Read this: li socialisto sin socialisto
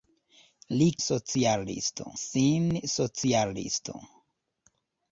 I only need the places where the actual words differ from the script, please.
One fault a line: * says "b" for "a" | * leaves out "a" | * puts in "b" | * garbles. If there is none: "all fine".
all fine